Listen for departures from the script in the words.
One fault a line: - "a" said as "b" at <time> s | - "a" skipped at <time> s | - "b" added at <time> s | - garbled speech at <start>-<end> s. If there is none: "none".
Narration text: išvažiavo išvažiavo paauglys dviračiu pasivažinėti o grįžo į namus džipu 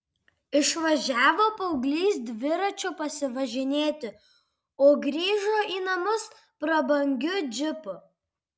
- "išvažiavo" skipped at 1.4 s
- "prabangiu" added at 6.7 s